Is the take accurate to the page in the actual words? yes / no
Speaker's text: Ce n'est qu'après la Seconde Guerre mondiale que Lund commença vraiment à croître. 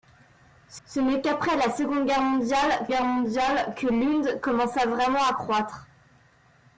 no